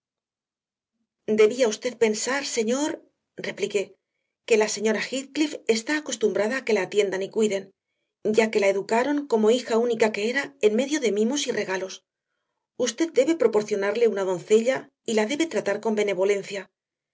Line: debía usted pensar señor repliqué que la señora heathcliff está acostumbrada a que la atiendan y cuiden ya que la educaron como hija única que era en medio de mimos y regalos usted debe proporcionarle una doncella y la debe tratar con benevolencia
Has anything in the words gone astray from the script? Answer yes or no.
no